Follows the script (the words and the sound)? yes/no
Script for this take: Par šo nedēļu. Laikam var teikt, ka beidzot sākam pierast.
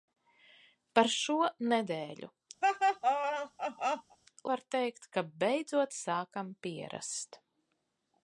no